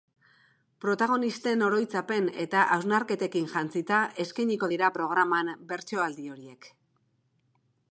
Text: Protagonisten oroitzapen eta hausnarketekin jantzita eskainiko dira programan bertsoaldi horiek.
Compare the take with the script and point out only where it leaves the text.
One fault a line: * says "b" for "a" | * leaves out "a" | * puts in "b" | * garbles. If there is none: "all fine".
all fine